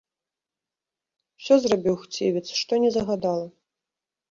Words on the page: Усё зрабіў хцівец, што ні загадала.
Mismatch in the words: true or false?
false